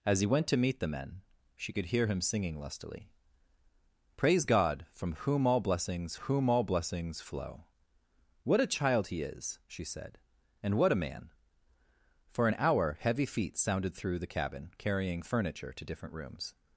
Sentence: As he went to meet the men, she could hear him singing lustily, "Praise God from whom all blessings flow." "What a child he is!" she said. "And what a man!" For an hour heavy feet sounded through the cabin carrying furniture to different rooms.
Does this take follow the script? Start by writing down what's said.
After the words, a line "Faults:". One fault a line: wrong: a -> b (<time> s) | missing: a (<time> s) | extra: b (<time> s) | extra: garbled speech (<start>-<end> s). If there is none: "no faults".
As he went to meet the men, she could hear him singing lustily, "Praise God from whom all blessings whom all blessings flow." "What a child he is!" she said. "And what a man!" For an hour heavy feet sounded through the cabin carrying furniture to different rooms.
Faults:
extra: whom all blessings (6.1 s)